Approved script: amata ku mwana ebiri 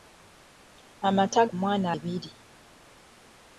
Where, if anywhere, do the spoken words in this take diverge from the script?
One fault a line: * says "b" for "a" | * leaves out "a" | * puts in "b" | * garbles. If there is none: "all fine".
all fine